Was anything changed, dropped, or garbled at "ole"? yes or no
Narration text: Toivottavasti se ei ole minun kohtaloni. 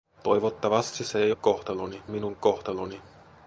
yes